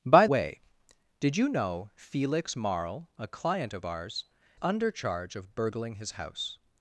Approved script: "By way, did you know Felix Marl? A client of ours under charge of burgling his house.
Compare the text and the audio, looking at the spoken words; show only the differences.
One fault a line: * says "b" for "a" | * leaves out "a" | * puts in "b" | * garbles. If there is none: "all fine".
all fine